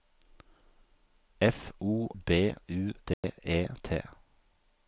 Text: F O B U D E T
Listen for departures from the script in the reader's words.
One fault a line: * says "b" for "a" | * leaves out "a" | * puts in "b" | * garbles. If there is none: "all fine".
all fine